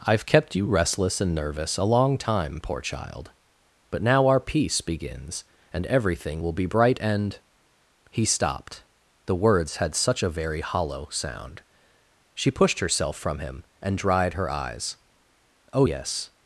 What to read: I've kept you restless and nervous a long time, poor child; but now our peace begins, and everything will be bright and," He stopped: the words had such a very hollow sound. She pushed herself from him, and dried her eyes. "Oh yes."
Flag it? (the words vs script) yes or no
no